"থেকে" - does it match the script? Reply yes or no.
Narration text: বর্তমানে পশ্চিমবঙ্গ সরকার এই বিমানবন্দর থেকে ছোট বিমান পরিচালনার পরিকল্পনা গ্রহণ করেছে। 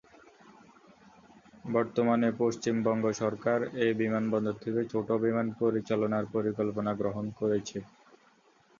yes